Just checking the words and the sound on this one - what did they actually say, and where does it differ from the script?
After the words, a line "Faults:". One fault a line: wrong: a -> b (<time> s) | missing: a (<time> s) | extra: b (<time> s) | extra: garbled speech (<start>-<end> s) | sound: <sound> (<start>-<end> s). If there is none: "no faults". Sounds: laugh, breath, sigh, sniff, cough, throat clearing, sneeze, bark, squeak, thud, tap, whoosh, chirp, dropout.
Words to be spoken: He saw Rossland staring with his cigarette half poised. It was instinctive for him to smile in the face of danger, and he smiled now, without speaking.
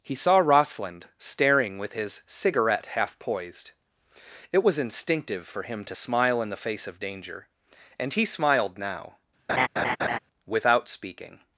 He saw Rossland staring with his cigarette half poised. It was instinctive for him to smile in the face of danger, and he smiled now, without speaking.
Faults:
sound: laugh (9.5-10.2 s)